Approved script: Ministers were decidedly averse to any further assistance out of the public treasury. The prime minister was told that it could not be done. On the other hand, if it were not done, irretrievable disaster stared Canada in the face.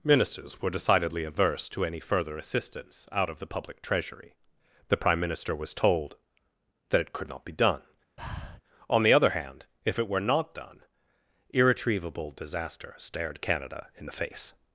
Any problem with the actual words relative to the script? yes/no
no